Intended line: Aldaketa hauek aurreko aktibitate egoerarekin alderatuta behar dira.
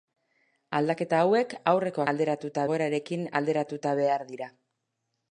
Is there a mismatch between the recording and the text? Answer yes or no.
yes